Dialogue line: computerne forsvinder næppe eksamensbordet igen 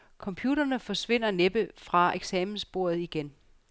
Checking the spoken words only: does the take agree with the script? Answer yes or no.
no